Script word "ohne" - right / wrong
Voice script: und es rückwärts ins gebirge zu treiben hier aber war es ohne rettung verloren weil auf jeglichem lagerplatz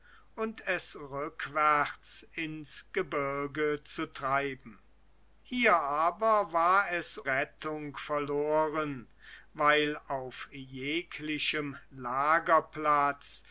wrong